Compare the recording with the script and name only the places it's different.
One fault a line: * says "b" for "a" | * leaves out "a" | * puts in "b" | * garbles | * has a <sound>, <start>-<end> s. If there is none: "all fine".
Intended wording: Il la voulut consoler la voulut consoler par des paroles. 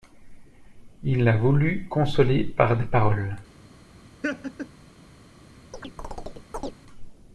* leaves out "la voulut consoler"
* has a laugh, 4.2-4.7 s
* has a chirp, 5.7-6.8 s